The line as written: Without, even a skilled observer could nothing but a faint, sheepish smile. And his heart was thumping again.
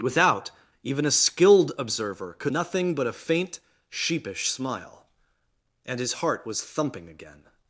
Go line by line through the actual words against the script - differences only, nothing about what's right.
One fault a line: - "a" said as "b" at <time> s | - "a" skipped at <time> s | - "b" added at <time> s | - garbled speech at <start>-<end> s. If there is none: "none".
none